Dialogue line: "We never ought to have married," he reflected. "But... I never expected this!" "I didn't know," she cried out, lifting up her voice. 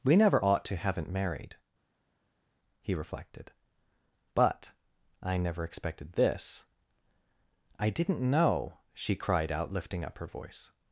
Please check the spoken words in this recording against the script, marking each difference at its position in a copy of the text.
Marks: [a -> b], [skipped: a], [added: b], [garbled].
"We never ought to [have -> haven't] married," he reflected. "But... I never expected this!" "I didn't know," she cried out, lifting up her voice.